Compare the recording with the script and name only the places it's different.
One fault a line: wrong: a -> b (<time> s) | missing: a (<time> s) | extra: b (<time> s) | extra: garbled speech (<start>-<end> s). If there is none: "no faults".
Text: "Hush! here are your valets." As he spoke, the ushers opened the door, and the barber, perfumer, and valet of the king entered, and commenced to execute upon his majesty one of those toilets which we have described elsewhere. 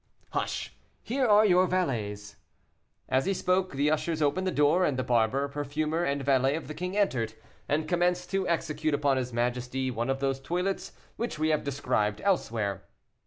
no faults